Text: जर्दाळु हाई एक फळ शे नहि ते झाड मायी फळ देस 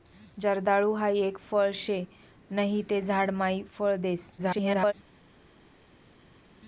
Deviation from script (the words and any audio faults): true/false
true